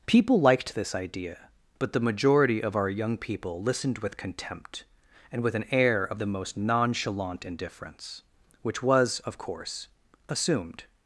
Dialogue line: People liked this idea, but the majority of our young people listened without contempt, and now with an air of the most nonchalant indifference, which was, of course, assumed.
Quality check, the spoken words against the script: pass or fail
fail